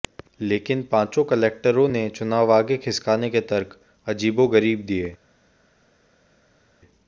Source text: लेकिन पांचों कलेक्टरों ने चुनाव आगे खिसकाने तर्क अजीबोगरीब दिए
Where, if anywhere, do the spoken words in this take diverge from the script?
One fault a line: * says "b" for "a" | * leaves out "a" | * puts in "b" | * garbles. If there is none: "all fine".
* puts in "के"